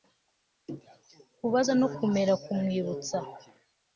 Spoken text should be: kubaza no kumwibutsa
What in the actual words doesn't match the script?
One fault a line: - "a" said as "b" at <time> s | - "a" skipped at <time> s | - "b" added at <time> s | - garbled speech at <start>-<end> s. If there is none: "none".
- "kumera" added at 1.9 s